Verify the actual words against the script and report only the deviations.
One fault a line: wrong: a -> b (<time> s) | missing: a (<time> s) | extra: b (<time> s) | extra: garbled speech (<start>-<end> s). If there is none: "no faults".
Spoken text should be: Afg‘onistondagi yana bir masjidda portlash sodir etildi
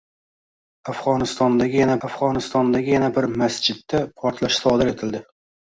extra: afg‘onistondagi yana (2.1 s)